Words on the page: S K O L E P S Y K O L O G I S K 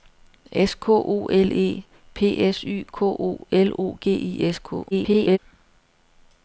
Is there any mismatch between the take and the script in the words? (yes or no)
yes